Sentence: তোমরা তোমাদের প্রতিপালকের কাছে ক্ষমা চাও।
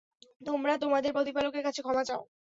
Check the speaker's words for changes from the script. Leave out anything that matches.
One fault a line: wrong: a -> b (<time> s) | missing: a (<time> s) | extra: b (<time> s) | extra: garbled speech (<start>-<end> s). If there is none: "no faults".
no faults